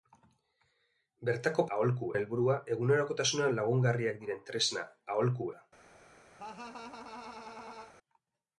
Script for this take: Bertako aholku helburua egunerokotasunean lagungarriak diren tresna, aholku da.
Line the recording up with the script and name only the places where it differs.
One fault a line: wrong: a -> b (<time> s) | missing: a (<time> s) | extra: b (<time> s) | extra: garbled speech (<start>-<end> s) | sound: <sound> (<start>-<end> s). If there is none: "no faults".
sound: laugh (6.4-7.9 s)